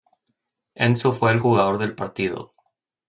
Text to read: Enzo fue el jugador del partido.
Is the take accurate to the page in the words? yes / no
yes